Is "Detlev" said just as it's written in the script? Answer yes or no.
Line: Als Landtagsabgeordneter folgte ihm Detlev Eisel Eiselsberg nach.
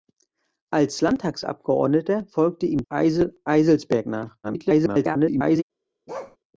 no